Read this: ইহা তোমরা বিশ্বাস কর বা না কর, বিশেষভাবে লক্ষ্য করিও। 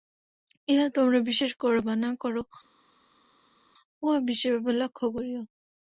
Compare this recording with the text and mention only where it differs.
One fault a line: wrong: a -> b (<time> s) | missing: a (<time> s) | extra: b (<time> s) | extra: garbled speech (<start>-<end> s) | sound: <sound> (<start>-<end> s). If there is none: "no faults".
extra: উহা (4.0 s)